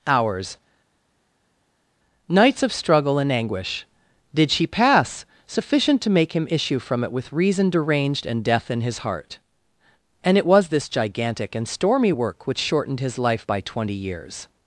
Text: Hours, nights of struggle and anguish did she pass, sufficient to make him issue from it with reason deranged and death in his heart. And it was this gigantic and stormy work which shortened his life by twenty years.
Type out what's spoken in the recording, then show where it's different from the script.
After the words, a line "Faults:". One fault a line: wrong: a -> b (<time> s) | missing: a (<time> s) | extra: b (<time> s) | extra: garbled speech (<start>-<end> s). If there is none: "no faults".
Hours, nights of struggle and anguish did she pass, sufficient to make him issue from it with reason deranged and death in his heart. And it was this gigantic and stormy work which shortened his life by twenty years.
Faults:
no faults